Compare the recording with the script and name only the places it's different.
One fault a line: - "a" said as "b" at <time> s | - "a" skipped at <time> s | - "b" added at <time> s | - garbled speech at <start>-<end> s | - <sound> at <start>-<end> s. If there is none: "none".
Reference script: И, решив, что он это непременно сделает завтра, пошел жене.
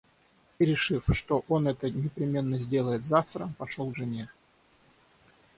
none